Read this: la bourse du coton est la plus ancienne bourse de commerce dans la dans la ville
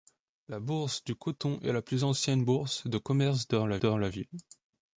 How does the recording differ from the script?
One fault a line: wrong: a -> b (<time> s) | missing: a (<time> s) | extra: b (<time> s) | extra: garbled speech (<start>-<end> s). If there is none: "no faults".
no faults